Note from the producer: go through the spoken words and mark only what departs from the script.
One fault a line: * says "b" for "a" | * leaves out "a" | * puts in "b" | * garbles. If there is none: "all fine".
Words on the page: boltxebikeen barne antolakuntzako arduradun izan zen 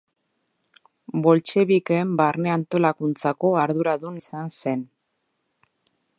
all fine